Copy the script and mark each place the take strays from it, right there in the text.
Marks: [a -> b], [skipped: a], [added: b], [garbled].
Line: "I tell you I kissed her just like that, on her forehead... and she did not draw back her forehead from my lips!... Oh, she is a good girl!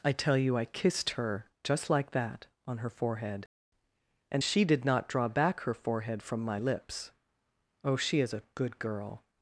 "I tell you I kissed her just like that, on her forehead... and she did not draw back her forehead from my lips!... Oh, she is a good girl!